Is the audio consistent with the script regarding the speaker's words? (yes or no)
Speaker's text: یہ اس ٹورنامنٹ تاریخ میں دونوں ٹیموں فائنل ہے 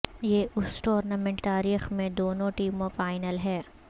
yes